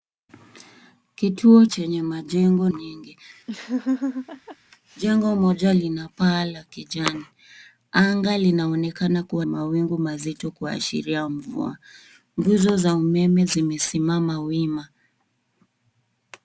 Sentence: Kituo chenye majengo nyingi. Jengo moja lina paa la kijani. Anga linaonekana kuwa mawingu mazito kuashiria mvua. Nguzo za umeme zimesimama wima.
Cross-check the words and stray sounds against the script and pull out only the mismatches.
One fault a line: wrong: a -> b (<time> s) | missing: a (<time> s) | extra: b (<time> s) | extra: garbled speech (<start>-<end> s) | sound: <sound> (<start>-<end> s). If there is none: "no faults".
sound: laugh (3.5-4.6 s)